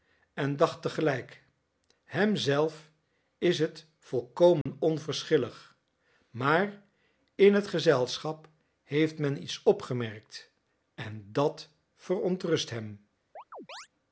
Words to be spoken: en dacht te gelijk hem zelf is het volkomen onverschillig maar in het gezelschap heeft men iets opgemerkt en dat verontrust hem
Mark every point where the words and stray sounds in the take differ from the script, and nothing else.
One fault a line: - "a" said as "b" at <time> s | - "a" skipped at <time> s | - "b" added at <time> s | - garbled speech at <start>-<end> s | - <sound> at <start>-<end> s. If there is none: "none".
- dropout at 4.6-4.7 s
- chirp at 13.4-13.9 s